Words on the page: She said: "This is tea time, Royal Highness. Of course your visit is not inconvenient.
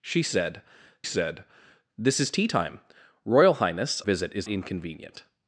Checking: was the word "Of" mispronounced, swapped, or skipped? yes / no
yes